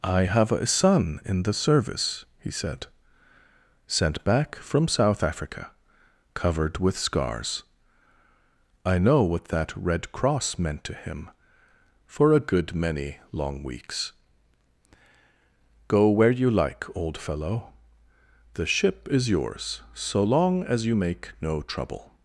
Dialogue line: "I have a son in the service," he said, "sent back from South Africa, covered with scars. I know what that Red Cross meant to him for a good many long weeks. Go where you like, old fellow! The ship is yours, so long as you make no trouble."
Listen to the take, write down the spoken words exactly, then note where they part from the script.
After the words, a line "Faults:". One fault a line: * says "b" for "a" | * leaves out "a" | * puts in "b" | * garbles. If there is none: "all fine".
"I have a son in the service," he said, "sent back from South Africa, covered with scars. I know what that Red Cross meant to him for a good many long weeks. Go where you like, old fellow! The ship is yours, so long as you make no trouble."
Faults:
all fine